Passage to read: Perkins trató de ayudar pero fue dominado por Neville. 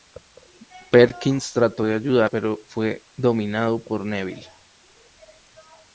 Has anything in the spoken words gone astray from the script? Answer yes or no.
no